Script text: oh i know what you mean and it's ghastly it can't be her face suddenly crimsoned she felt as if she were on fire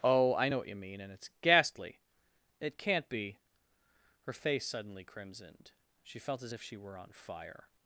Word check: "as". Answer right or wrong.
right